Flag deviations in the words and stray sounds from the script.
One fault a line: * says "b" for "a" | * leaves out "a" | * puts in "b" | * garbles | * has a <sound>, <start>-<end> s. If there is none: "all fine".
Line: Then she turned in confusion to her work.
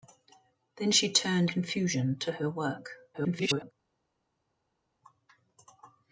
* leaves out "in"
* garbles